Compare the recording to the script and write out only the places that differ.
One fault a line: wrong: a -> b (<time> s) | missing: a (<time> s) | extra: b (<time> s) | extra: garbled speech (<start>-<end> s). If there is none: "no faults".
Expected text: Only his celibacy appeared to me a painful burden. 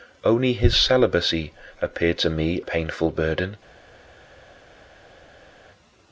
missing: a (2.6 s)